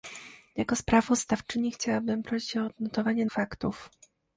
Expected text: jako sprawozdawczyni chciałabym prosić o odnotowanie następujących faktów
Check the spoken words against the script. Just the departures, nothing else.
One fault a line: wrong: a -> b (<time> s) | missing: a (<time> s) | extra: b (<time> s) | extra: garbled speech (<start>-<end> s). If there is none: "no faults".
missing: następujących (3.3 s)